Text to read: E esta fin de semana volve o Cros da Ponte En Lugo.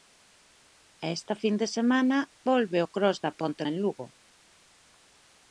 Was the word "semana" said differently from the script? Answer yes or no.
no